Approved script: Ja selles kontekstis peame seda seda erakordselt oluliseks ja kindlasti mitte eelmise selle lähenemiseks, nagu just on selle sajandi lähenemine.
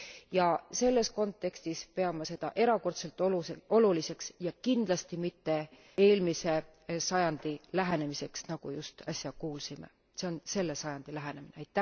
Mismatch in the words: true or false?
true